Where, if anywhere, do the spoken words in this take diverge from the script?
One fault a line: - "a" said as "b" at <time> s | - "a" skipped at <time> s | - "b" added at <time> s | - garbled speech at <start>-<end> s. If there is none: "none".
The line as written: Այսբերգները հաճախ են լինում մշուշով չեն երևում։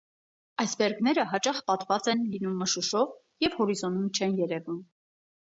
- "պատված" added at 1.7 s
- "և հորիզոնում" added at 3.5 s